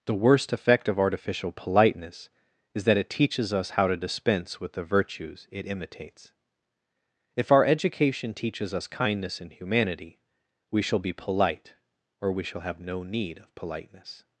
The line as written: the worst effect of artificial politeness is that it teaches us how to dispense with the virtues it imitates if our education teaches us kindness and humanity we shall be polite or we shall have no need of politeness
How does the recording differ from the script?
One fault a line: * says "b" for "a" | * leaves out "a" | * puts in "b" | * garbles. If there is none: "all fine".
all fine